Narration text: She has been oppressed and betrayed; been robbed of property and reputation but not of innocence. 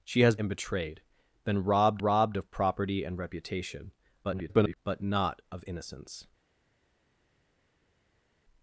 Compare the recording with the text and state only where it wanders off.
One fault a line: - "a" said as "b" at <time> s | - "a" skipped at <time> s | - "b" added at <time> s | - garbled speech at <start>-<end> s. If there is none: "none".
- "been oppressed" skipped at 0.3 s
- "robbed" added at 2.0 s
- garbled speech at 4.2-4.8 s